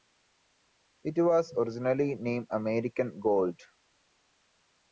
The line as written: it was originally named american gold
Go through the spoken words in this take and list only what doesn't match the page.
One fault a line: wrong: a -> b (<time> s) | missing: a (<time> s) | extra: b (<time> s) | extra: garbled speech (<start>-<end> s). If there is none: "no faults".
no faults